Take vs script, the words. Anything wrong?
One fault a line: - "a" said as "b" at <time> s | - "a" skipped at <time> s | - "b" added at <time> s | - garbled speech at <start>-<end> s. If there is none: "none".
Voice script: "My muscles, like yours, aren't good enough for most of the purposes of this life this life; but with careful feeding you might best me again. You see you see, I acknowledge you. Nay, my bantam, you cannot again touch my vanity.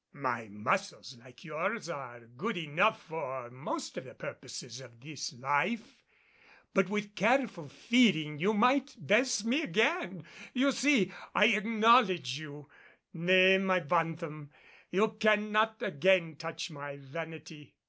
- "aren't" said as "are" at 1.9 s
- "this life" skipped at 6.0 s
- "you see" skipped at 11.1 s